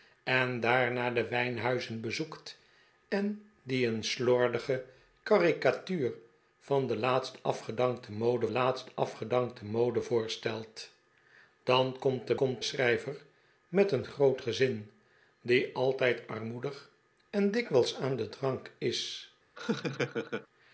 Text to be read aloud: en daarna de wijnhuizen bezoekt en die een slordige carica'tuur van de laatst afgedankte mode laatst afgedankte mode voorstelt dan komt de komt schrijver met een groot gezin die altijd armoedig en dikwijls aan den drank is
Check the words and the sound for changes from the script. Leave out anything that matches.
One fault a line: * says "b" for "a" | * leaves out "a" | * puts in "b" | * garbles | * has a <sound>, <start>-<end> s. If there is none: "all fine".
* has a laugh, 19.6-20.5 s